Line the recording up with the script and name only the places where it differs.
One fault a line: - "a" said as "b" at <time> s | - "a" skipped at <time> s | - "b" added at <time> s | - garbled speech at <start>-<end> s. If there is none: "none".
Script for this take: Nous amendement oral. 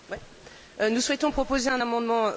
- "souhaitons proposer un" added at 1.0 s